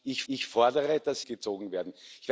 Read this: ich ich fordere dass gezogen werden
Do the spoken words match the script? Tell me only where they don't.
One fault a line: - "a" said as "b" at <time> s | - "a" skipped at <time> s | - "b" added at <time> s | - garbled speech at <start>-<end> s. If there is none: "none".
none